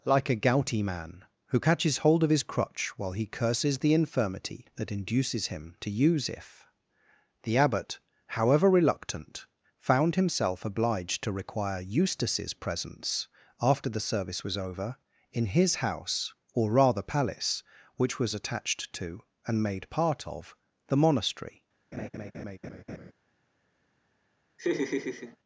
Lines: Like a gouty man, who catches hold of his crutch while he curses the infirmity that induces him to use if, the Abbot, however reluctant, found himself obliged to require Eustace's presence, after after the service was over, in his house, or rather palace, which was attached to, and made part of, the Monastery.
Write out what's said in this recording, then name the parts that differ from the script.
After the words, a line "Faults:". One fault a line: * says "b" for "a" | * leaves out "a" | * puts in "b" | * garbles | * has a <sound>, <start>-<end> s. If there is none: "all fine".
Like a gouty man, who catches hold of his crutch while he curses the infirmity that induces him to use if, the Abbot, however reluctant, found himself obliged to require Eustace's presence, after the service was over, in his house, or rather palace, which was attached to, and made part of, the Monastery.
Faults:
* leaves out "after"
* has a laugh, 21.9-23.1 s
* has a laugh, 24.6-25.4 s